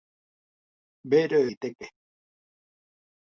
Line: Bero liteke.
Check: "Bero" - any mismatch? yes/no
no